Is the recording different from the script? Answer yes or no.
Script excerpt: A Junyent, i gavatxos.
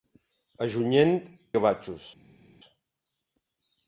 no